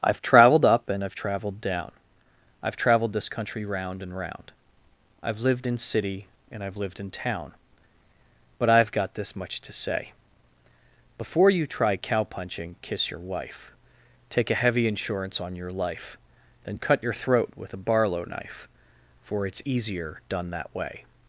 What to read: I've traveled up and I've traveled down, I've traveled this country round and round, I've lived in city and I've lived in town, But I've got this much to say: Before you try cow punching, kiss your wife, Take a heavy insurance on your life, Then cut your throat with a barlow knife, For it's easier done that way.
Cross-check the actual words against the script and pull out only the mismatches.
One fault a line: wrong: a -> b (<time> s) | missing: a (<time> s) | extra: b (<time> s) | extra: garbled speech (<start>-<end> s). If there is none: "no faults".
no faults